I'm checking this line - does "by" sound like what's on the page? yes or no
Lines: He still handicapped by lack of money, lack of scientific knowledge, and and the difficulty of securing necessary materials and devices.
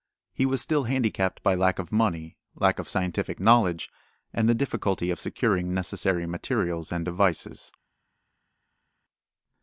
yes